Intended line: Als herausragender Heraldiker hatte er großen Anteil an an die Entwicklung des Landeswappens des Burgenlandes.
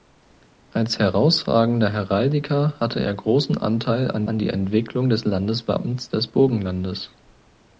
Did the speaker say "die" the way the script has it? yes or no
yes